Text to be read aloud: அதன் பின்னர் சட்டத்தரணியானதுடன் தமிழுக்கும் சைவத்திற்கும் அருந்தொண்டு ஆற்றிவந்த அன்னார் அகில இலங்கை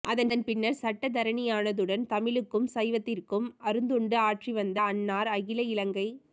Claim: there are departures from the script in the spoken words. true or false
false